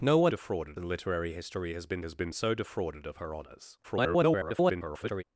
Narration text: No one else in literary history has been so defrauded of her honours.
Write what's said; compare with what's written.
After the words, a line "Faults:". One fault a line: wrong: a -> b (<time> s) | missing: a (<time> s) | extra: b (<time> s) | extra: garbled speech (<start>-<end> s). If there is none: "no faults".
No one defrauded in literary history has been has been so defrauded of her honours. [garbled]
Faults:
wrong: else -> defrauded (0.3 s)
extra: has been (2.0 s)
extra: garbled speech (3.8-5.2 s)